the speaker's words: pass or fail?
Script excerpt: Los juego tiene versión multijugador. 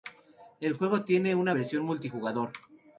fail